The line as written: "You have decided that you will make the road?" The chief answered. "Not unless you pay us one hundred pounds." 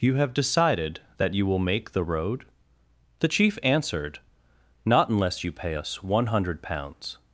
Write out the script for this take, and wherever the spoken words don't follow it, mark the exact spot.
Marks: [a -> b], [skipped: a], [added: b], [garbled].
"You have decided that you will make the road?" The chief answered. "Not unless you pay us one hundred pounds."